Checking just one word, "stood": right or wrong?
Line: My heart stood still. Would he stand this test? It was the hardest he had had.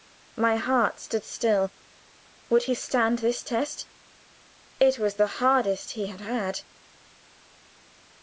right